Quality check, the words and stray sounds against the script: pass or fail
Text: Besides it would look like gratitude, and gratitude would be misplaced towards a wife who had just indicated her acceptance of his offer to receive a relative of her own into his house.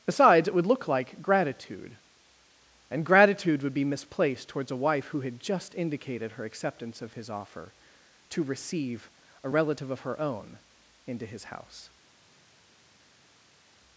pass